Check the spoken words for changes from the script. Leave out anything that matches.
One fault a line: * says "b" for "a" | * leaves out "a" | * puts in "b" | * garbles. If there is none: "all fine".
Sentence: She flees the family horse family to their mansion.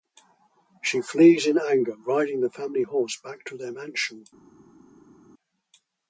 * puts in "in anger riding"
* says "back" for "family"